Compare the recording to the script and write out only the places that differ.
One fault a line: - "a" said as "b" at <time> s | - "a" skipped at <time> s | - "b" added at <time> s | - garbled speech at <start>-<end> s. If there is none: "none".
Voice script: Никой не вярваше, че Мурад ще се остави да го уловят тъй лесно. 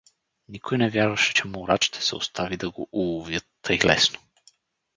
none